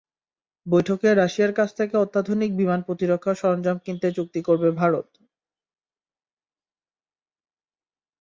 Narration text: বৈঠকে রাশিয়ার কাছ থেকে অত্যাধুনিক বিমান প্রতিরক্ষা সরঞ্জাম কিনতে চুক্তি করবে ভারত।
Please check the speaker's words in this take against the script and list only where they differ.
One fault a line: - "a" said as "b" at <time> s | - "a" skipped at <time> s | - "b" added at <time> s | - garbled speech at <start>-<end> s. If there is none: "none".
none